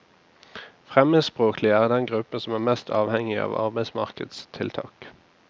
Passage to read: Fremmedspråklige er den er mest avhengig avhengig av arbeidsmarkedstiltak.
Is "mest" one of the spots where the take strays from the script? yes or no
no